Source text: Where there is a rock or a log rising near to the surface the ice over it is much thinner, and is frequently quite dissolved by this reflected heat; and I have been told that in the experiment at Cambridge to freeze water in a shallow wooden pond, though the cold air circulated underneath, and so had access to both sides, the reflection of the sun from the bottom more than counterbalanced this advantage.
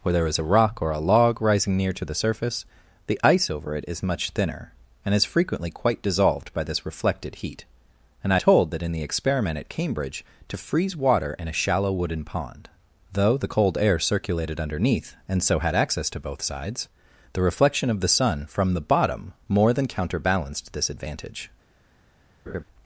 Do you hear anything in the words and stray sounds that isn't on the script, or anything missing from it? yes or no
yes